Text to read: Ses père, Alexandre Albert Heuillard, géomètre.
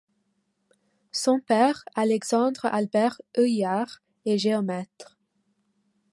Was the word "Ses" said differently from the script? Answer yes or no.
yes